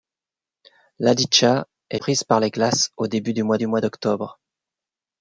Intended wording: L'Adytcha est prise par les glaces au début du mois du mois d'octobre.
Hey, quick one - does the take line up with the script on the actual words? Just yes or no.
yes